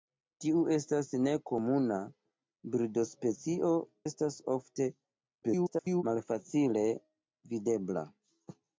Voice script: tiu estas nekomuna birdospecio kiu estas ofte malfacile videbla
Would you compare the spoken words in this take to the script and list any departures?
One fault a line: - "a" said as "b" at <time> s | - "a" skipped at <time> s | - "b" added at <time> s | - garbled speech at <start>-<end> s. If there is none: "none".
- "kiu" skipped at 3.7 s
- garbled speech at 5.4-6.0 s